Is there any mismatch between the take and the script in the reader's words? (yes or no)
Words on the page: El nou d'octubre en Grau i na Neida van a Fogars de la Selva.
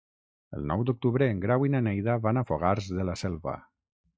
no